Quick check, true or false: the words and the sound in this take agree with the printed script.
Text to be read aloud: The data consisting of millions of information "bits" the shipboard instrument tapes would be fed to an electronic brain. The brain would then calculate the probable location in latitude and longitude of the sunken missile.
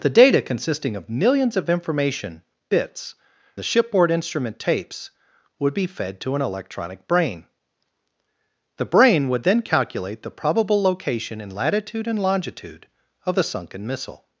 true